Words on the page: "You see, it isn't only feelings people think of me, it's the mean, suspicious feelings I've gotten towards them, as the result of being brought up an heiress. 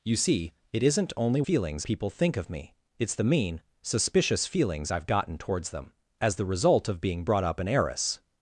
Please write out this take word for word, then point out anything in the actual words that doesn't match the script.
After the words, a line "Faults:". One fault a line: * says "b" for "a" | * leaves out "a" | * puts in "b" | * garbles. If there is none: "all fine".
"You see, it isn't only feelings people think of me, it's the mean, suspicious feelings I've gotten towards them, as the result of being brought up an heiress.
Faults:
all fine